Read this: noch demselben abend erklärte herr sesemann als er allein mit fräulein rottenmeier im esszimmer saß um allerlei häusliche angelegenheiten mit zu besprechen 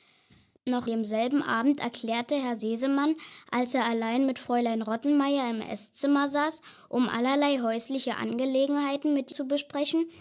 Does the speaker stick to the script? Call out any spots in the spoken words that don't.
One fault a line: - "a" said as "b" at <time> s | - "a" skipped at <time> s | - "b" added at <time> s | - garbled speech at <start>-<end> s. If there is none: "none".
none